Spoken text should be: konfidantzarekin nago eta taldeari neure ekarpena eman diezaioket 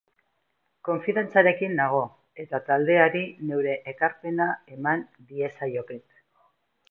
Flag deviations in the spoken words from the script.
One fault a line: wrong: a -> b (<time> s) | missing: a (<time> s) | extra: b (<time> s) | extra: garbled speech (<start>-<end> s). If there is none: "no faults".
no faults